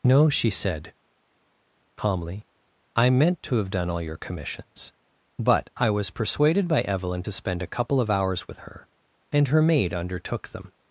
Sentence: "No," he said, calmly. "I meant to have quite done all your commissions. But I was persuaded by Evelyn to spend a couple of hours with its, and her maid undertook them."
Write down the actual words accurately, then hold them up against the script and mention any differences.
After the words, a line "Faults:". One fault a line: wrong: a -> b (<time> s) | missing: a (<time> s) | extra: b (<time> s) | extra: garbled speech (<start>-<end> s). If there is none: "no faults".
"No," she said, calmly. "I meant to have done all your commissions. But I was persuaded by Evelyn to spend a couple of hours with her, and her maid undertook them."
Faults:
wrong: he -> she (0.3 s)
missing: quite (3.7 s)
wrong: its -> her (8.6 s)